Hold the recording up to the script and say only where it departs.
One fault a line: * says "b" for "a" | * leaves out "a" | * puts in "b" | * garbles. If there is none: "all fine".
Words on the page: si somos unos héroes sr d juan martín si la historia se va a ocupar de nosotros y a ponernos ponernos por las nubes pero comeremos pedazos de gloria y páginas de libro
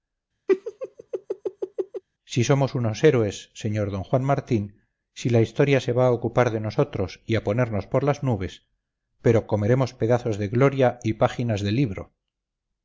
* leaves out "ponernos"